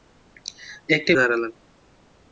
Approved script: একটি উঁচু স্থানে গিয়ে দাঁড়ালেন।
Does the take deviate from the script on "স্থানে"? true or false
true